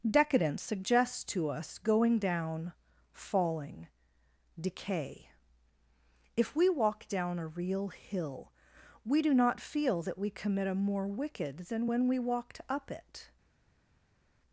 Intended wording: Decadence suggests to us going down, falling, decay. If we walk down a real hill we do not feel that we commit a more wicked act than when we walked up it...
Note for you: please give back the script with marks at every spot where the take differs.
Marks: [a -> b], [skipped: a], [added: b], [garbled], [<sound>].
Decadence suggests to us going down, falling, decay. If we walk down a real hill we do not feel that we commit a more wicked [skipped: act] than when we walked up it...